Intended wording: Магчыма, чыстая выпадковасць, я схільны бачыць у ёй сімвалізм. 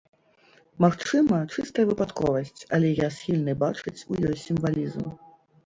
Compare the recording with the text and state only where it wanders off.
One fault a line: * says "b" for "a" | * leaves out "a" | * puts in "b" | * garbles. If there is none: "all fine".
* puts in "але"